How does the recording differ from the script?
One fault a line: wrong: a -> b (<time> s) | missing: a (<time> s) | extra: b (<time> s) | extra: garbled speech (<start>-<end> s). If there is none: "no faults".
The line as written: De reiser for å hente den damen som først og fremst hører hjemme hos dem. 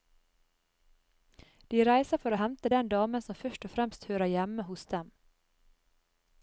no faults